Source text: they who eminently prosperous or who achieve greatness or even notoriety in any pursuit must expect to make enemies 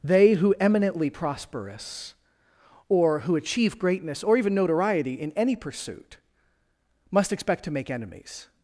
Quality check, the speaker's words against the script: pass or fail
pass